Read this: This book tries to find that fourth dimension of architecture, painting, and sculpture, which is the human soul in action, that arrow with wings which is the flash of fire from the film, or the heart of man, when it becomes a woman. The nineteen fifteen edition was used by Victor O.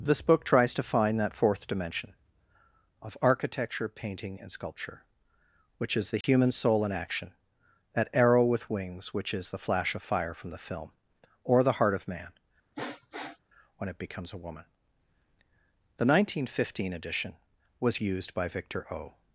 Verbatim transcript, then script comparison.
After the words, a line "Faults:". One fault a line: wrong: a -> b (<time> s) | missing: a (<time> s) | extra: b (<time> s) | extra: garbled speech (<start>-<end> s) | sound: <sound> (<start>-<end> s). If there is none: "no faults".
This book tries to find that fourth dimension of architecture, painting, and sculpture, which is the human soul in action, that arrow with wings which is the flash of fire from the film, or the heart of man, when it becomes a woman. The nineteen fifteen edition was used by Victor O.
Faults:
sound: dropout (6.2-6.2 s)
sound: sniff (12.7-13.4 s)